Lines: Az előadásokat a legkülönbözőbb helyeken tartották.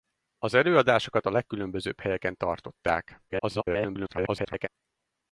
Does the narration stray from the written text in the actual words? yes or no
yes